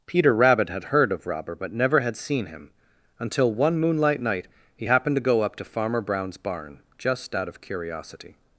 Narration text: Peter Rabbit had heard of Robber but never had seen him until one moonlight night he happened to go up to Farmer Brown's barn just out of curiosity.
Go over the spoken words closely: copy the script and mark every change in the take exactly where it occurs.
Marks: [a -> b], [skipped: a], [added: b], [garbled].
Peter Rabbit had heard of Robber but never had seen him until one moonlight night he happened to go up to Farmer Brown's barn just out of curiosity.